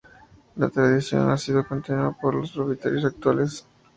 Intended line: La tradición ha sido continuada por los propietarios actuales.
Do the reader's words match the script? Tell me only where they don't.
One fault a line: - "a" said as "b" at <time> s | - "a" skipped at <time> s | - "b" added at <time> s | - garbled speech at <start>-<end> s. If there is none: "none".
none